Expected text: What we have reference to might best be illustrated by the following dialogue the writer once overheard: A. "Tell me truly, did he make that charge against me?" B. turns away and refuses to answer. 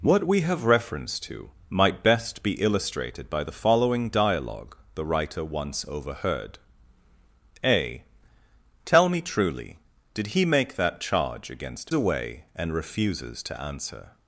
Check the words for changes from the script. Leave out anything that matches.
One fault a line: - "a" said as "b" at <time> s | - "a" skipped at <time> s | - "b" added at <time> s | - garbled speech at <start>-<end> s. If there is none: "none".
- "me B turns" skipped at 11.9 s